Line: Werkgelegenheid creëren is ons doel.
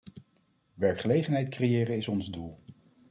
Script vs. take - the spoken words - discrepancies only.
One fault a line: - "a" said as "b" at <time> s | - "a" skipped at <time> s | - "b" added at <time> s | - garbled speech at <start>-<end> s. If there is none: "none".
none